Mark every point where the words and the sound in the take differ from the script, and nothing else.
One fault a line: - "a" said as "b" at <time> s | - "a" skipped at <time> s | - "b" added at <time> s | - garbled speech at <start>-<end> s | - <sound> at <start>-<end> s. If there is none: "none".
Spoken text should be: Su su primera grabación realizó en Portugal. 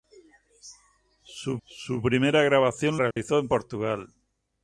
- dropout at 3.1-3.2 s